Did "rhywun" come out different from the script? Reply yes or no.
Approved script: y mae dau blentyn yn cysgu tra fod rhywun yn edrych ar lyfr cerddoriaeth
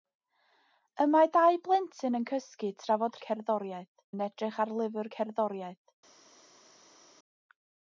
yes